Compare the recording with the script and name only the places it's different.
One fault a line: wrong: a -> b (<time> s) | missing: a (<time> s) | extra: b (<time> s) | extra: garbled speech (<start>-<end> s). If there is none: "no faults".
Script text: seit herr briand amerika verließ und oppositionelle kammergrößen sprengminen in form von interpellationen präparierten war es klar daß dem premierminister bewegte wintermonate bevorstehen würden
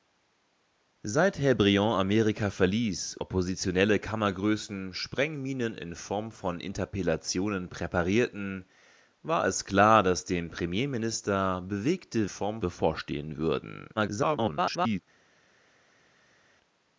missing: und (3.2 s)
wrong: wintermonate -> form (12.3 s)
extra: garbled speech (14.0-15.0 s)